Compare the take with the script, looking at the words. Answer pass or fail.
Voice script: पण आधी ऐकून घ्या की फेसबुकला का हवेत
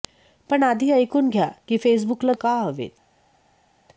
pass